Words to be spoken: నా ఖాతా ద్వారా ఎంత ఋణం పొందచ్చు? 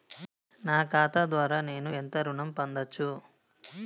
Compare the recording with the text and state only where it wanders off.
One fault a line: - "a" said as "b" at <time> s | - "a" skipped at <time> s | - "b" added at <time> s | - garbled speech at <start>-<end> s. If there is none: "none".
- "నేను" added at 1.6 s